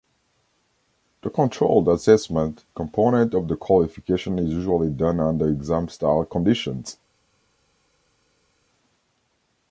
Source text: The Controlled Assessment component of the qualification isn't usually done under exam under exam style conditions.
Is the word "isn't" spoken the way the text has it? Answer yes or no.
no